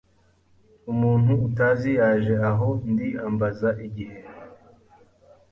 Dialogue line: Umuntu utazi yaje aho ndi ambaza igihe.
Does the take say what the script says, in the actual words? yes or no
yes